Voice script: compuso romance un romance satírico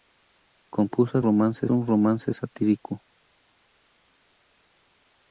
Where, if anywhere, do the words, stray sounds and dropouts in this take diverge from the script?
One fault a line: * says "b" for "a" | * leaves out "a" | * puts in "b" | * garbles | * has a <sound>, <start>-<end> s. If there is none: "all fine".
all fine